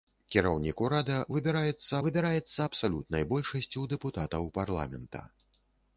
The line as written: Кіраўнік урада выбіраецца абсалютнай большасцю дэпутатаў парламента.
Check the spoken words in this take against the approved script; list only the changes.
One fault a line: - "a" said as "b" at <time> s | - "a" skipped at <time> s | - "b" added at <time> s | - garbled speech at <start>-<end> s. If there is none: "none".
- "выбіраецца" added at 2.1 s